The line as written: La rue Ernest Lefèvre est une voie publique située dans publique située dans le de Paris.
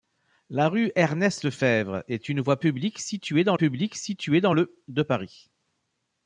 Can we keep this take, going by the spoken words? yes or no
yes